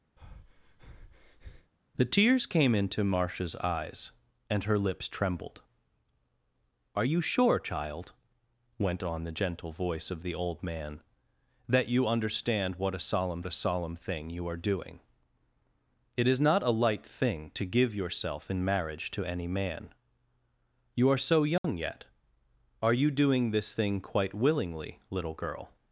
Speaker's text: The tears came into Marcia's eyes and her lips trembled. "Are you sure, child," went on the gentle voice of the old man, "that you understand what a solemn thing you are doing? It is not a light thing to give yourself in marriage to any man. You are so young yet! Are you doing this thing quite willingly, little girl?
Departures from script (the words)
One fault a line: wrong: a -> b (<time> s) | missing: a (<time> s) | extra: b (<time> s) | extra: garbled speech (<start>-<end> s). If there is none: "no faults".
extra: a solemn (13.5 s)